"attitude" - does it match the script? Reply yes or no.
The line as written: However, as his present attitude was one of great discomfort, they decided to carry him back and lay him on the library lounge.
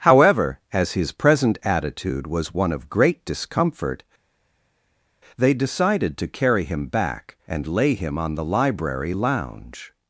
yes